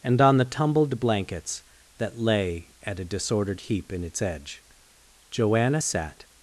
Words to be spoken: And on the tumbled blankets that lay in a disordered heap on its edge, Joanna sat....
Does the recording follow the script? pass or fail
fail